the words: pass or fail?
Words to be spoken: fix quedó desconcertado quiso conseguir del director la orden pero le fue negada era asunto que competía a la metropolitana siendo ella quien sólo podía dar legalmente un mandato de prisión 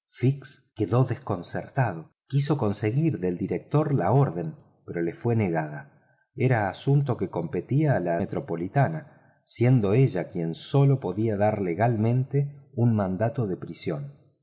pass